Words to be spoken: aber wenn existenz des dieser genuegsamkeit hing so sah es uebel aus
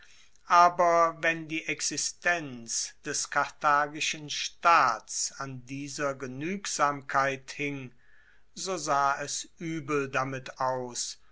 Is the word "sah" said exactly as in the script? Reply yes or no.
yes